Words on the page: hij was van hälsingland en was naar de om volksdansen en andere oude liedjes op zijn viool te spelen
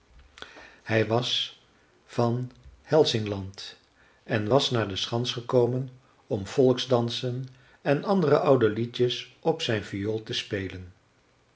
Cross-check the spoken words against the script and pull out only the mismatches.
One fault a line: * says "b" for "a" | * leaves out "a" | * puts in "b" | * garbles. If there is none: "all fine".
* puts in "schans gekomen"